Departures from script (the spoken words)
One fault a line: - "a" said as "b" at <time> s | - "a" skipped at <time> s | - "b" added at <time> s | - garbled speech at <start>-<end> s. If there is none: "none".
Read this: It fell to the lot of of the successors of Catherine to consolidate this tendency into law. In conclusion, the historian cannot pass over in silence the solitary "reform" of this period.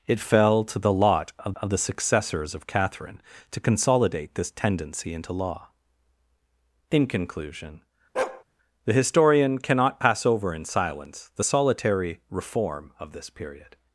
none